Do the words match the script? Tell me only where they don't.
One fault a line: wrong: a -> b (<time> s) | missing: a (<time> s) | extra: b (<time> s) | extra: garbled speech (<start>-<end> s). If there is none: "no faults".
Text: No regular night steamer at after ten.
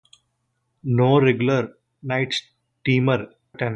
missing: at after (3.3 s)